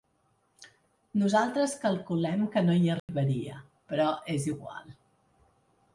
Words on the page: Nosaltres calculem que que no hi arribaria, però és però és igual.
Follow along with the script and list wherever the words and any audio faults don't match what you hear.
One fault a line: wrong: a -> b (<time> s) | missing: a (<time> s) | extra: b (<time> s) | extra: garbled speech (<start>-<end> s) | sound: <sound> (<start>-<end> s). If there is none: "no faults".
missing: que (2.6 s)
sound: dropout (3.0-3.1 s)
missing: però és (4.5 s)